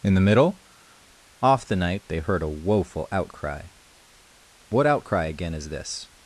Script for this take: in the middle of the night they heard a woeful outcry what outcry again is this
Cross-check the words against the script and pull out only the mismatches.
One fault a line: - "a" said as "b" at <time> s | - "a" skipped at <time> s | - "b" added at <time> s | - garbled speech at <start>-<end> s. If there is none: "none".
- "of" said as "off" at 1.4 s